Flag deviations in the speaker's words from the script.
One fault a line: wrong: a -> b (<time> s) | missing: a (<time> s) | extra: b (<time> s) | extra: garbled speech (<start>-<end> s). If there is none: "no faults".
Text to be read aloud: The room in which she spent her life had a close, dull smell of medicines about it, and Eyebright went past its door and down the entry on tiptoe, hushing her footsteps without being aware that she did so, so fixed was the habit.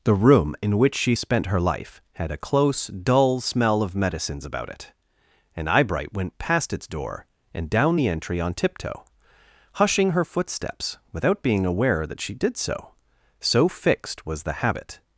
no faults